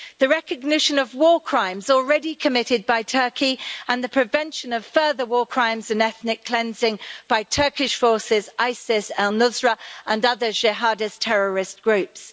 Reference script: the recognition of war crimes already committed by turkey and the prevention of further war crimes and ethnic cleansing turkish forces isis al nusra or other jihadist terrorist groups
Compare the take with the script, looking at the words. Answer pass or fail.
fail